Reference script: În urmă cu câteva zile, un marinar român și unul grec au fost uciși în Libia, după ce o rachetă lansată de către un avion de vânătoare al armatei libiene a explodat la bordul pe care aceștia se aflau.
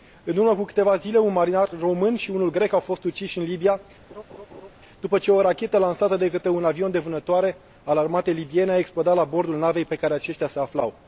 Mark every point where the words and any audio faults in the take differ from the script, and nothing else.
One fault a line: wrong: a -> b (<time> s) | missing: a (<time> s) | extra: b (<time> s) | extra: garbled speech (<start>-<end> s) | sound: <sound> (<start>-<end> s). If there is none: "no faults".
sound: laugh (4.1-4.7 s)
extra: navei (9.6 s)